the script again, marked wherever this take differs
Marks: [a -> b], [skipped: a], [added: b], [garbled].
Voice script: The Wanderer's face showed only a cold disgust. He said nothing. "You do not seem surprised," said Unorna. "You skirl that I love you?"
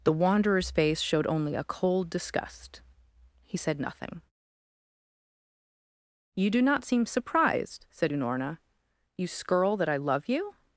The Wanderer's face showed only a cold disgust. He said nothing. "You do not seem surprised," said Unorna. "You skirl that I love you?"